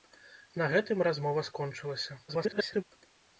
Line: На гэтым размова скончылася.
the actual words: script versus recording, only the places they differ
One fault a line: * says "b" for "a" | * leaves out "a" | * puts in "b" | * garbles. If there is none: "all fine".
* garbles